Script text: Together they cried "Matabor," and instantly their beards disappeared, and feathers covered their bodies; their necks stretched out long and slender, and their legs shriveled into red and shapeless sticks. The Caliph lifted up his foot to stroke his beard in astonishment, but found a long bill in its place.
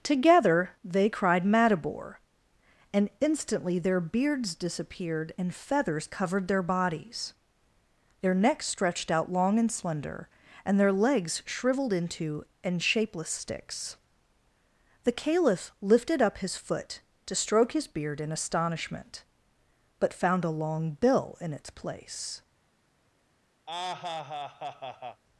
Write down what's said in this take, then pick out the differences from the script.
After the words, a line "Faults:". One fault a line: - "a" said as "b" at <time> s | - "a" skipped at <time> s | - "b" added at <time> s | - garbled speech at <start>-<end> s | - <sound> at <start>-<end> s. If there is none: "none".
Together they cried "Matabor," and instantly their beards disappeared, and feathers covered their bodies; their necks stretched out long and slender, and their legs shriveled into and shapeless sticks. The Caliph lifted up his foot to stroke his beard in astonishment, but found a long bill in its place.
Faults:
- "red" skipped at 12.4 s
- laugh at 23.7-25.2 s